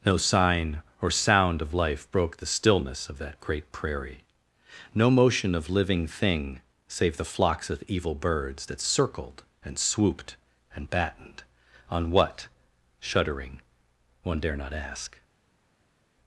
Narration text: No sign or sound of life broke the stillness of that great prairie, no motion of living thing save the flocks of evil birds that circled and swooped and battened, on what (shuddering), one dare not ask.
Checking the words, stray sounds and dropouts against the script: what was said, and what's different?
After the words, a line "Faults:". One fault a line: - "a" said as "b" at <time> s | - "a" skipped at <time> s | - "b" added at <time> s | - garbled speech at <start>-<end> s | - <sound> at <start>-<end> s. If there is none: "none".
No sign or sound of life broke the stillness of that great prairie, no motion of living thing save the flocks of evil birds that circled and swooped and battened, on what (shuddering), one dare not ask.
Faults:
none